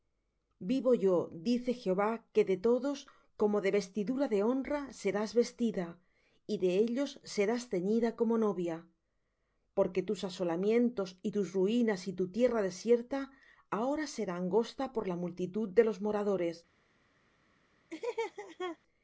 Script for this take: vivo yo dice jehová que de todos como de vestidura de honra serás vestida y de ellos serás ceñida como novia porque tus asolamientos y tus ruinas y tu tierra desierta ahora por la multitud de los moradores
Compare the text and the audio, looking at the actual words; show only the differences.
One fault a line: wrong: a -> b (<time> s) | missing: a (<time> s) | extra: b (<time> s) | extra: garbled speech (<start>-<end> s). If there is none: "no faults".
extra: será angosta (14.1 s)